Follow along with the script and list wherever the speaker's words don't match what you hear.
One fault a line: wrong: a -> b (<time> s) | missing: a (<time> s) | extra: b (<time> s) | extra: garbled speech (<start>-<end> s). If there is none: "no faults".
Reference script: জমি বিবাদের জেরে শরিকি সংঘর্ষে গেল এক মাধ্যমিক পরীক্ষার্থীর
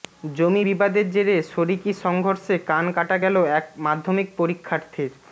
extra: কান কাটা (2.7 s)